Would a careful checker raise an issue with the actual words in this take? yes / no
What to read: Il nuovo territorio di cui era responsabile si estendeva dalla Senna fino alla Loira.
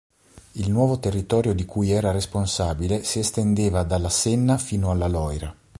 no